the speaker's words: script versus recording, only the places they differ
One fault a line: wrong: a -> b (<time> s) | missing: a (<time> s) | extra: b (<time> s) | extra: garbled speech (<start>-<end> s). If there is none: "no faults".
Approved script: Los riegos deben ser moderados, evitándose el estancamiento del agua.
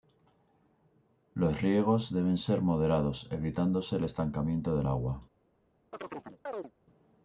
no faults